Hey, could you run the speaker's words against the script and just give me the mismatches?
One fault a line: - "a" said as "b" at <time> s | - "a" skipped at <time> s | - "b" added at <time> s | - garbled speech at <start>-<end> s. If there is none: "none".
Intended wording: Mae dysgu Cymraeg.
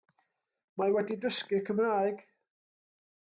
- "wedi" added at 0.9 s